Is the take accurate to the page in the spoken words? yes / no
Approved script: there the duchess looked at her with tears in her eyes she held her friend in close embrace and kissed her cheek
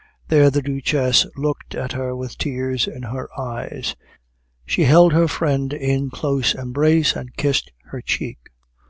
yes